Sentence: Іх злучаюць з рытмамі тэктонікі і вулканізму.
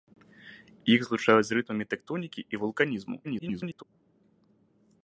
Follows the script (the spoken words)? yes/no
no